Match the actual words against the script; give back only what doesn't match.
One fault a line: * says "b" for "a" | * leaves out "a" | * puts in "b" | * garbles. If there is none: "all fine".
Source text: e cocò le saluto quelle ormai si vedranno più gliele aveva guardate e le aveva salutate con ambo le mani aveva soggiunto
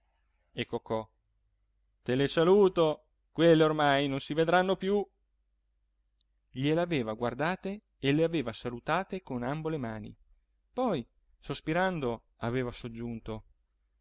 * puts in "te"
* puts in "non"
* puts in "poi sospirando"